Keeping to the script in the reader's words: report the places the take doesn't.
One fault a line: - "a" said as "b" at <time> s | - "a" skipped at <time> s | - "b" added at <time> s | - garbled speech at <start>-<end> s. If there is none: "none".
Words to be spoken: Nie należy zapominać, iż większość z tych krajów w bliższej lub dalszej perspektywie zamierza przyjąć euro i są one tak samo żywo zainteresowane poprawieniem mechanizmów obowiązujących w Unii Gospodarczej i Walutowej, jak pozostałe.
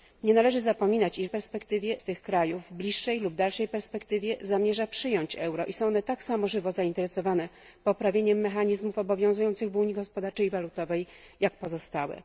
- "większość" said as "perspektywie" at 1.3 s